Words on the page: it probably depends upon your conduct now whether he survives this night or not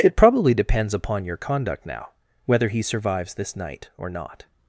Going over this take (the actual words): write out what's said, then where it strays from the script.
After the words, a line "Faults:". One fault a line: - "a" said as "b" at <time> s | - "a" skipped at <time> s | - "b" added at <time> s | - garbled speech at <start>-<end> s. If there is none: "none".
it probably depends upon your conduct now whether he survives this night or not
Faults:
none